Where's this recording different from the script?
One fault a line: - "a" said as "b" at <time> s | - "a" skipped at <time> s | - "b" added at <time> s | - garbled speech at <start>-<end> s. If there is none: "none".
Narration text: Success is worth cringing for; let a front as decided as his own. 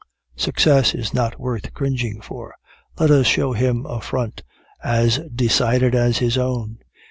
- "not" added at 1.1 s
- "us show him" added at 3.1 s